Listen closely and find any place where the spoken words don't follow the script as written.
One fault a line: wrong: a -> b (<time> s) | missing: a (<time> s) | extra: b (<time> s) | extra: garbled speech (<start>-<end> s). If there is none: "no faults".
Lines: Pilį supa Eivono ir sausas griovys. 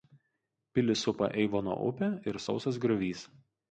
extra: upė (1.9 s)